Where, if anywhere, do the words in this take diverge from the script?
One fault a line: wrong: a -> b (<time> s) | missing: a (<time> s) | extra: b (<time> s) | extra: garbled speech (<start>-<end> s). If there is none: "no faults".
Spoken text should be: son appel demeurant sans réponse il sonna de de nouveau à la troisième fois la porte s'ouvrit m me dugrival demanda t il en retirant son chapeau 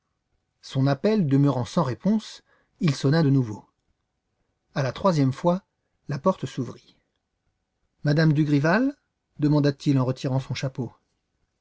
missing: de (3.3 s)